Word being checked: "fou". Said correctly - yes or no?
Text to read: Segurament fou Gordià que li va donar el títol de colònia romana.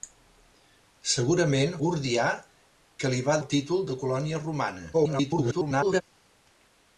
no